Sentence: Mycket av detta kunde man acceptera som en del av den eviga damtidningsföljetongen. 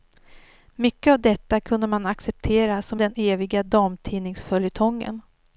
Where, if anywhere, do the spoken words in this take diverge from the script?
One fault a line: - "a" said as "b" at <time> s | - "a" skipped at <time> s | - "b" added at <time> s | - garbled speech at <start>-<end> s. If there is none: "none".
- "en del av" skipped at 3.0 s